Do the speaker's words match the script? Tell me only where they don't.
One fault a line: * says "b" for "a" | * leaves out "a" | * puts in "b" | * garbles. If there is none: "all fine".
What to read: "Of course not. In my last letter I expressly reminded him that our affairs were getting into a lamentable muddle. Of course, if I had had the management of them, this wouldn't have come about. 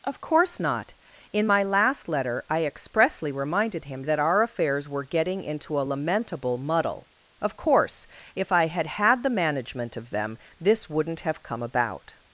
all fine